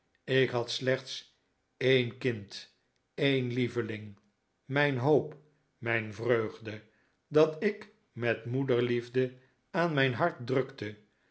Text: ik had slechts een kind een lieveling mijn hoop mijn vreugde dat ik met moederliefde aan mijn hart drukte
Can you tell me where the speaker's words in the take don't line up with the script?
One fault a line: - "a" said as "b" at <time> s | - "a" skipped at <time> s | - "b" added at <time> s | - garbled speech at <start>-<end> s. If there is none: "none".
none